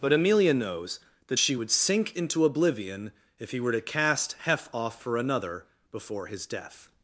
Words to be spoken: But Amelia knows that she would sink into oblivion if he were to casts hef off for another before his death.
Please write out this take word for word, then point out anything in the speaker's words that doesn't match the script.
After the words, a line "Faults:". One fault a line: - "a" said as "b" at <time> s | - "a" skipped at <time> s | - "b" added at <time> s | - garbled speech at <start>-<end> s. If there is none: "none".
But Amelia knows that she would sink into oblivion if he were to cast hef off for another before his death.
Faults:
- "casts" said as "cast" at 3.8 s